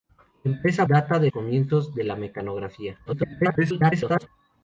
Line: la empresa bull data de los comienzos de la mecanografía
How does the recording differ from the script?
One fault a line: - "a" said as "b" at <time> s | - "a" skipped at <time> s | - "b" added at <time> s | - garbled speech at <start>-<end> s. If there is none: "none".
- "bull" skipped at 0.8 s
- "los" skipped at 1.3 s
- garbled speech at 3.1-4.3 s